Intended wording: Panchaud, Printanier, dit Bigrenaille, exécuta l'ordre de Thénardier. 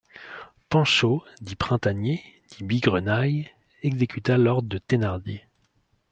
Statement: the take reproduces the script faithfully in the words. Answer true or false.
false